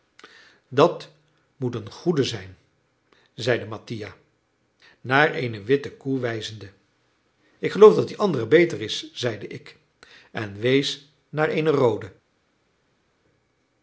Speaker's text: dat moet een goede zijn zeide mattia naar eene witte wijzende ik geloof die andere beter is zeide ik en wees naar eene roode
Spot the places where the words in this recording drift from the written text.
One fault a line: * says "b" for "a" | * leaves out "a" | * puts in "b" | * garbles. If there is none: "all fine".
* puts in "koe"
* puts in "dat"